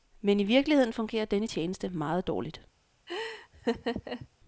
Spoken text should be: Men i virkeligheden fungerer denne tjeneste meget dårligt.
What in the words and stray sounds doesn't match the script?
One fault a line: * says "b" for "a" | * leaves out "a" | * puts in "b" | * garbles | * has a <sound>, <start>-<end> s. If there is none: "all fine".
* has a laugh, 3.1-4.3 s